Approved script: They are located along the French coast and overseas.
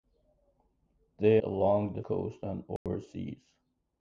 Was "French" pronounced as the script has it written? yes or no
no